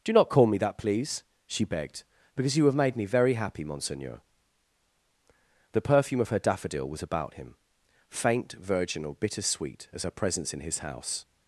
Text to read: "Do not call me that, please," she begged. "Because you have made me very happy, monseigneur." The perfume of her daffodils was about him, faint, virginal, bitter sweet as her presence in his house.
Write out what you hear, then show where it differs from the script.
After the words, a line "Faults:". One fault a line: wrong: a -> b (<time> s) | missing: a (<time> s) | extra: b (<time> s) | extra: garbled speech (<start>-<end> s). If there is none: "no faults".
"Do not call me that, please," she begged. "Because you have made me very happy, monseigneur." The perfume of her daffodil was about him, faint, virginal, bitter sweet as her presence in his house.
Faults:
wrong: daffodils -> daffodil (6.4 s)